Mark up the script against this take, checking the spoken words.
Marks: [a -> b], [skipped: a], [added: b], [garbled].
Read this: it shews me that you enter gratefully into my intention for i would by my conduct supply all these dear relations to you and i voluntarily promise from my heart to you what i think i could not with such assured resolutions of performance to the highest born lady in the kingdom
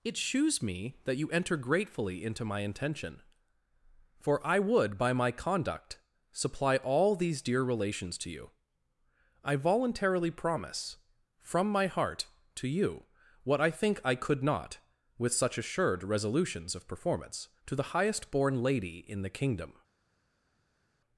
it shews me that you enter gratefully into my intention for i would by my conduct supply all these dear relations to you [skipped: and] i voluntarily promise from my heart to you what i think i could not with such assured resolutions of performance to the highest born lady in the kingdom